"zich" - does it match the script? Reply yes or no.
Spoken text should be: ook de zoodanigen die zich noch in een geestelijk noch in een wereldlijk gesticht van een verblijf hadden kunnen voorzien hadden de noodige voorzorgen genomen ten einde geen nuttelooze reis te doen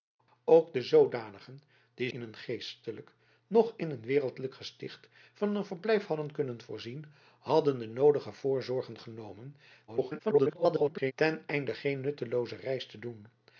no